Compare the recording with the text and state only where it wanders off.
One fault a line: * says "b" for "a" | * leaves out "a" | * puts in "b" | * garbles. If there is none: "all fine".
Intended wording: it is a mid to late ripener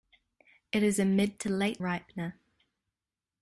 all fine